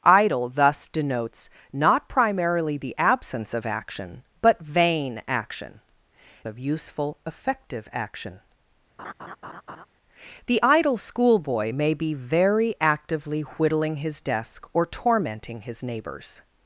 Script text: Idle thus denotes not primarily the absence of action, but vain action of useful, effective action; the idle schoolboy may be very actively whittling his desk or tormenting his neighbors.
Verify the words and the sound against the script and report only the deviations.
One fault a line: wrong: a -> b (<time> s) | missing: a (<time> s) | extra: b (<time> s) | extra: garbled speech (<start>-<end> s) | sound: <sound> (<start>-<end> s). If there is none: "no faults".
sound: laugh (9.0-9.9 s)